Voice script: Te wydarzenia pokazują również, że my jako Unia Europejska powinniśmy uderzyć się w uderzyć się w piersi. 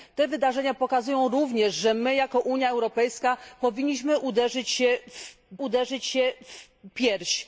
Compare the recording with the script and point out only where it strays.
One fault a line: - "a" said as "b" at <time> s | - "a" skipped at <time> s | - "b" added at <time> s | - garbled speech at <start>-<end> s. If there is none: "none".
none